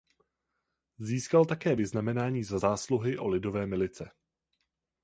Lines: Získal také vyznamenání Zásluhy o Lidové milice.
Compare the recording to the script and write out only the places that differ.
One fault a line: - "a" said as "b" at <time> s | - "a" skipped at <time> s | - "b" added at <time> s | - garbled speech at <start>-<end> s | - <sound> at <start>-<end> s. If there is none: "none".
- "Za" added at 2.4 s